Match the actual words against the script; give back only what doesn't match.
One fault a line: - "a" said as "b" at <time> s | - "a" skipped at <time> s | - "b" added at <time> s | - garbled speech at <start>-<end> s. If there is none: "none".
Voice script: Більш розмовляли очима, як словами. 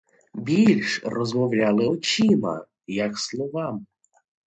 none